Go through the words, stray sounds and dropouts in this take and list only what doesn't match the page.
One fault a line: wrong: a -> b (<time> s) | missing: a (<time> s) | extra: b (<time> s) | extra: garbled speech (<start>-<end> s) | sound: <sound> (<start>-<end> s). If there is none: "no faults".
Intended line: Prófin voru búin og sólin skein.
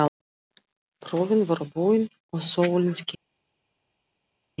no faults